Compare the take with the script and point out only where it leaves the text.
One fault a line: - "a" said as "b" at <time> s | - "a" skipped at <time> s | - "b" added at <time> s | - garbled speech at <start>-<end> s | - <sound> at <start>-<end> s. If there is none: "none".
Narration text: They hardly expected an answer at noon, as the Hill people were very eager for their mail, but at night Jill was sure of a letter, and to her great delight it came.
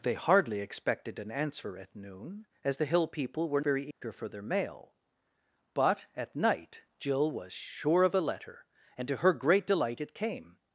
- dropout at 3.9-4.0 s